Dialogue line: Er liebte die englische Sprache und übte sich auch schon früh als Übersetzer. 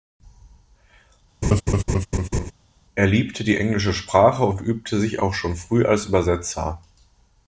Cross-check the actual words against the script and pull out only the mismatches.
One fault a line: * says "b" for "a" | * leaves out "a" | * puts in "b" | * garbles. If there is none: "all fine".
all fine